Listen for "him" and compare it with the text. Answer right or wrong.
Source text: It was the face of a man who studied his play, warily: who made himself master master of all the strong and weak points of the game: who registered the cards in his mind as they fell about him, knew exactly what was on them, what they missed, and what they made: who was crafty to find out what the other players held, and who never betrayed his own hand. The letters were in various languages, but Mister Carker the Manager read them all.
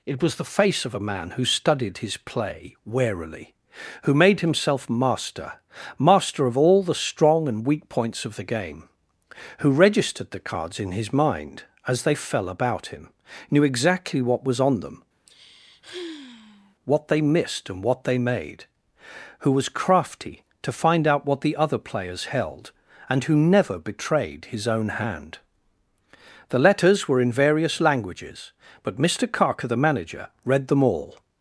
right